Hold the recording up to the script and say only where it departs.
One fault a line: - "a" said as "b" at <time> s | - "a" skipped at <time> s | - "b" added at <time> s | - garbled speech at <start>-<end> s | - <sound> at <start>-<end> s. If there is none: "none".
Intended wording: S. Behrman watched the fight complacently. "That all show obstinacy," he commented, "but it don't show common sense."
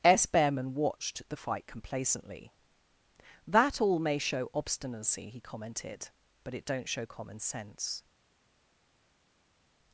- "may" added at 4.0 s